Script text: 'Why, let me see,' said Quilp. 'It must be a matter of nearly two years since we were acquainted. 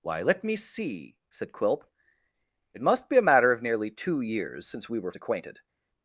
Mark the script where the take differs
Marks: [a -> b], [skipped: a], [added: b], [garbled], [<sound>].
'Why, let me see,' said Quilp. 'It must be a matter of nearly two years since we were acquainted.